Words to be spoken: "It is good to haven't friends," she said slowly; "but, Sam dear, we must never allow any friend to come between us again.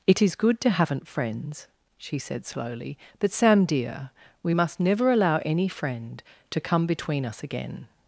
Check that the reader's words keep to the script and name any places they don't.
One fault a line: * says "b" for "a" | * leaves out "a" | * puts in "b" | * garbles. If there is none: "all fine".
all fine